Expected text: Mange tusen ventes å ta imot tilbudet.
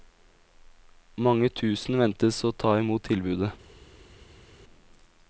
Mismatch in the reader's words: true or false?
false